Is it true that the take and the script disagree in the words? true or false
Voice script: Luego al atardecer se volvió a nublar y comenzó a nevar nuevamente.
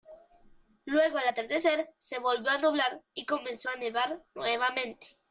false